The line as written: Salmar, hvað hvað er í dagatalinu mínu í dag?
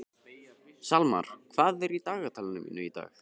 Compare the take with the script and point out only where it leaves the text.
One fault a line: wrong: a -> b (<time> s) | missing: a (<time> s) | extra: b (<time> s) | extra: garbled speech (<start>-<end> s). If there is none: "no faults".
missing: hvað (1.9 s)